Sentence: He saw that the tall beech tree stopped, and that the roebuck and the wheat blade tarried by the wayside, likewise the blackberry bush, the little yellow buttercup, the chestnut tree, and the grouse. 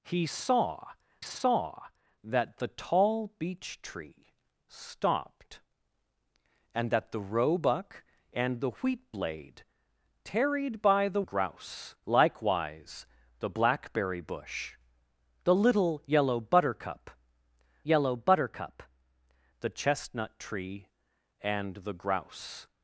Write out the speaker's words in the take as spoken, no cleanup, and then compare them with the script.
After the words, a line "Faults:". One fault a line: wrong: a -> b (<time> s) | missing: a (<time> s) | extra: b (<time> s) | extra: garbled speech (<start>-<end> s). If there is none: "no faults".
He saw saw that the tall beech tree stopped, and that the roebuck and the wheat blade tarried by the grouse, likewise the blackberry bush, the little yellow buttercup yellow buttercup, the chestnut tree, and the grouse.
Faults:
extra: saw (1.2 s)
wrong: wayside -> grouse (11.2 s)
extra: yellow buttercup (17.8 s)